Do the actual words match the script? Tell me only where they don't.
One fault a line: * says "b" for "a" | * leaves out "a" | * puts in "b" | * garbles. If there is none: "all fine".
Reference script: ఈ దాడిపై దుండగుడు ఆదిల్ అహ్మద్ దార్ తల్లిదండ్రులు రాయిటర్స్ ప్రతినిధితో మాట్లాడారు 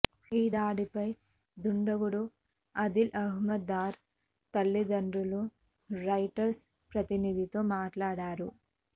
all fine